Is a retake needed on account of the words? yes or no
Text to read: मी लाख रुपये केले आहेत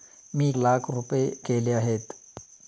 no